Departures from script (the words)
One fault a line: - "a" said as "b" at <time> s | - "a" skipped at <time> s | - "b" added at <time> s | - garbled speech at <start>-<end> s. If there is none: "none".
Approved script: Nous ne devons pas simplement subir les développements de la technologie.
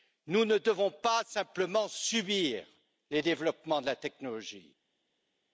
none